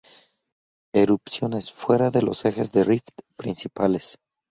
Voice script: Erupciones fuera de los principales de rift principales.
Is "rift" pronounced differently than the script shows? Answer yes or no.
no